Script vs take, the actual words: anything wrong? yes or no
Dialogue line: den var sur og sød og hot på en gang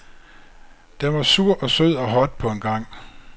no